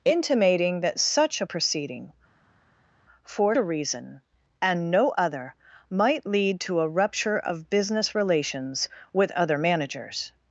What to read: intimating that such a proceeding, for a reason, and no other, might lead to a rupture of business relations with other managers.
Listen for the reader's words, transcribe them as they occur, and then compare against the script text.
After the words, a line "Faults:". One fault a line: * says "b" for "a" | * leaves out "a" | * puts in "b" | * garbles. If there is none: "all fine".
intimating that such a proceeding, for a reason, and no other, might lead to a rupture of business relations with other managers.
Faults:
all fine